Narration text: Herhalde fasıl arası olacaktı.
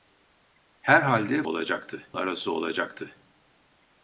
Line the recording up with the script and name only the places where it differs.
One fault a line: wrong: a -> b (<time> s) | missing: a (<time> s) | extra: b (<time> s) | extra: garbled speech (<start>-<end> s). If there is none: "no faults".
wrong: fasıl -> olacaktı (1.4 s)